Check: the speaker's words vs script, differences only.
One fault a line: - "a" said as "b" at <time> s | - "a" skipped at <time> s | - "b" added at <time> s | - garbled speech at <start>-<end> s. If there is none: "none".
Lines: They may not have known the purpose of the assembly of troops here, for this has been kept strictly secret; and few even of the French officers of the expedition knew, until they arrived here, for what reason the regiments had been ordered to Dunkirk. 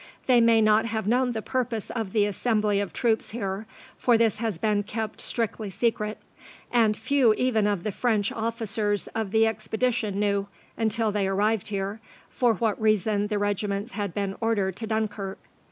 none